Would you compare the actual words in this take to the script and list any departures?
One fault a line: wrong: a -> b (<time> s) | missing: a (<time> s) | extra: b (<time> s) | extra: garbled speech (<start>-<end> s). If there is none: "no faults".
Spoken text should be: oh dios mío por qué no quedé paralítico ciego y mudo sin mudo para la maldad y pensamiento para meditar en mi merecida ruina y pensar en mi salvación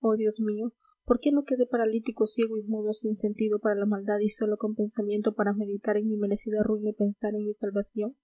wrong: mudo -> sentido (3.2 s)
extra: sólo con (4.3 s)